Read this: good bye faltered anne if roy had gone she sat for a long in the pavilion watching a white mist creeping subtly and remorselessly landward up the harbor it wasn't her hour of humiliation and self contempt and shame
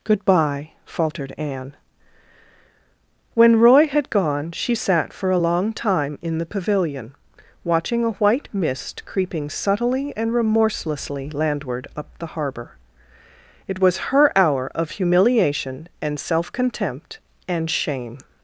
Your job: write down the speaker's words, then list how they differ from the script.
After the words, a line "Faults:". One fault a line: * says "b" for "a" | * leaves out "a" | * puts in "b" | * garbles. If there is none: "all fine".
good bye faltered anne when roy had gone she sat for a long time in the pavilion watching a white mist creeping subtly and remorselessly landward up the harbor it was her hour of humiliation and self contempt and shame
Faults:
* says "when" for "if"
* puts in "time"
* says "was" for "wasn't"